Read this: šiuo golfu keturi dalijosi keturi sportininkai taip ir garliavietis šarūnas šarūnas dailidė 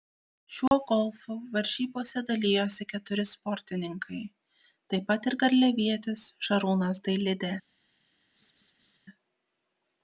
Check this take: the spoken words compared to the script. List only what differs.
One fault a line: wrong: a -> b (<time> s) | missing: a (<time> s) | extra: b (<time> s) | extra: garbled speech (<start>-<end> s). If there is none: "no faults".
wrong: keturi -> varžybose (1.6 s)
extra: pat (5.1 s)
missing: šarūnas (7.0 s)